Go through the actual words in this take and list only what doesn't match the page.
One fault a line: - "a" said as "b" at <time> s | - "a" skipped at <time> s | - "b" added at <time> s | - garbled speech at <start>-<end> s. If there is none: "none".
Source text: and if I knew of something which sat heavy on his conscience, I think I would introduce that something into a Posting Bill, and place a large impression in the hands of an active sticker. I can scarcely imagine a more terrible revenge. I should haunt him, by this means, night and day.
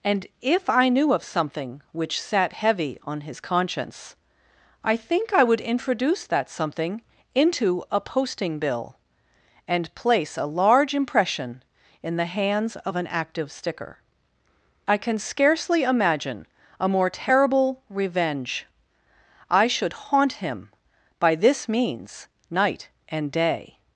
none